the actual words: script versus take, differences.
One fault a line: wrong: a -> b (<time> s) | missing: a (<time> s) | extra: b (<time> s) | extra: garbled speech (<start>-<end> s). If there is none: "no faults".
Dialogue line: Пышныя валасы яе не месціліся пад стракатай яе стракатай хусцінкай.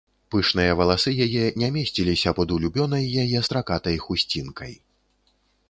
wrong: стракатай -> улюбёнай (2.6 s)